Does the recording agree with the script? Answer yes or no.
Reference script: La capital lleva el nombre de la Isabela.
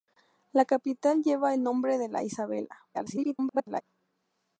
no